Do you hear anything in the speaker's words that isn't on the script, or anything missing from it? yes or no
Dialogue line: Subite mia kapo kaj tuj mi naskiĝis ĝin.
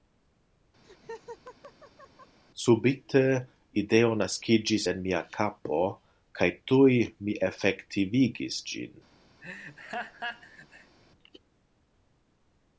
yes